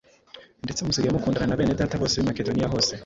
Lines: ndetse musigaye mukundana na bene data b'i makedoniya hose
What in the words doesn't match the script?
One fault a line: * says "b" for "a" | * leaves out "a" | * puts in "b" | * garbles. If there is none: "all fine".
* puts in "bose"